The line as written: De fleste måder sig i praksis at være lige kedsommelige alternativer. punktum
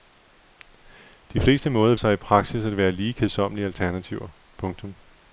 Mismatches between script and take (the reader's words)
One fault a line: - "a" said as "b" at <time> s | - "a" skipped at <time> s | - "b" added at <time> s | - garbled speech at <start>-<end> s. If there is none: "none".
none